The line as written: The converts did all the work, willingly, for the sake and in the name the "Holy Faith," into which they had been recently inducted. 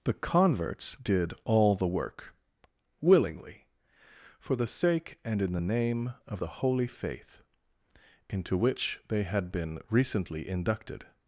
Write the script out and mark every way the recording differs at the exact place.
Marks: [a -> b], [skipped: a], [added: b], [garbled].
The converts did all the work, willingly, for the sake and in the name [added: of] the "Holy Faith," into which they had been recently inducted.